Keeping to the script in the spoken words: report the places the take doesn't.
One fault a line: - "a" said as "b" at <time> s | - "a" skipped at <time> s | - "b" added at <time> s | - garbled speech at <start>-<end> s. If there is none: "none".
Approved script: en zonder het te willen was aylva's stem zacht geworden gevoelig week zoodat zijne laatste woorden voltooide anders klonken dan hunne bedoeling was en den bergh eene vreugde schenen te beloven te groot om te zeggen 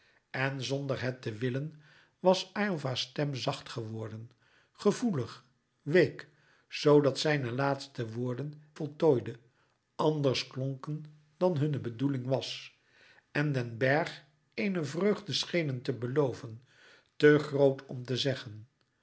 none